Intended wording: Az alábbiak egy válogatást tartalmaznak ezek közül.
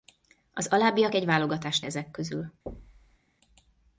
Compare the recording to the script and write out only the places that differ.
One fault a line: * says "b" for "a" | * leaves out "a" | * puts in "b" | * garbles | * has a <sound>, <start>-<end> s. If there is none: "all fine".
* leaves out "tartalmaznak"
* has a thud, 2.7-3.2 s